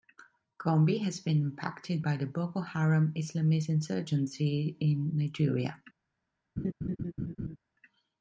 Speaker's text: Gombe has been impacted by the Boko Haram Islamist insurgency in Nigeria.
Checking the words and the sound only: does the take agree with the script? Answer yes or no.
no